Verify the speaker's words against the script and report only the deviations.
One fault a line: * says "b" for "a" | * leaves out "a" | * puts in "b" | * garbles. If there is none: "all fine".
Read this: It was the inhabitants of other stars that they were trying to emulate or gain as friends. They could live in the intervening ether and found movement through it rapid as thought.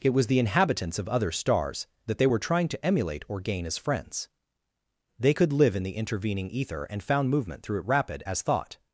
all fine